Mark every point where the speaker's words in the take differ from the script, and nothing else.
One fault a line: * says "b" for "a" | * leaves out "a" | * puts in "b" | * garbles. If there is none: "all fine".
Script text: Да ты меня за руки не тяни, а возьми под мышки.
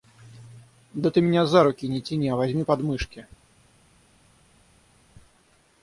all fine